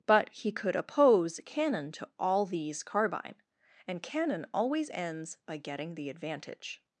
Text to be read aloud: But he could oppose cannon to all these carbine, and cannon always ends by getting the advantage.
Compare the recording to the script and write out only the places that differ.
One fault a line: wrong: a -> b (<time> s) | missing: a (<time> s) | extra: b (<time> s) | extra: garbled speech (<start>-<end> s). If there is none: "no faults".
no faults